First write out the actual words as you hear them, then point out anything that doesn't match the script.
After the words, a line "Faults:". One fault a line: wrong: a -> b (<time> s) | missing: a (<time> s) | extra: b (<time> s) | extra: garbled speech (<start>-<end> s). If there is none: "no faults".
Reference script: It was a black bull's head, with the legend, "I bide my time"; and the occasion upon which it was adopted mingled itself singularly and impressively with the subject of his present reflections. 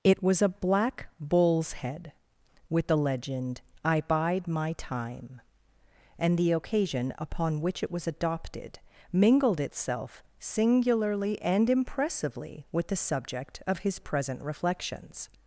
It was a black bull's head, with the legend, "I bide my time"; and the occasion upon which it was adopted mingled itself singularly and impressively with the subject of his present reflections.
Faults:
no faults